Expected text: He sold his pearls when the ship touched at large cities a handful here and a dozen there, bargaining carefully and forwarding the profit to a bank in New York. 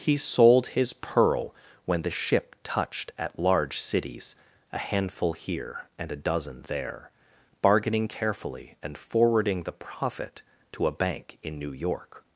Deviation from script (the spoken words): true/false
true